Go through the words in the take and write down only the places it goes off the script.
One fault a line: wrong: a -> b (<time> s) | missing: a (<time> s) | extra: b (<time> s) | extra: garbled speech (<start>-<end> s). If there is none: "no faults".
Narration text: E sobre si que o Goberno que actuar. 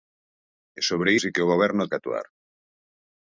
no faults